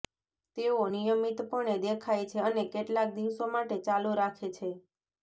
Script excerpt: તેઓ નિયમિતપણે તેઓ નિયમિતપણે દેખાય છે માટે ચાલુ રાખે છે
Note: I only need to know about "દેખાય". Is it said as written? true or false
false